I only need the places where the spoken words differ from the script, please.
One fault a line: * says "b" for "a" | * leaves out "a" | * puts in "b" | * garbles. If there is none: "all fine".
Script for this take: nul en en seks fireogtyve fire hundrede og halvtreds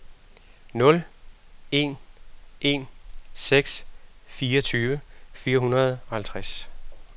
all fine